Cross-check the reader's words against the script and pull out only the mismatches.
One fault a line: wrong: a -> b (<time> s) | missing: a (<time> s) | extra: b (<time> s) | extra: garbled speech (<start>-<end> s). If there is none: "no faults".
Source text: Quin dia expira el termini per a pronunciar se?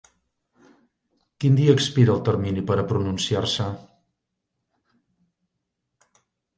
no faults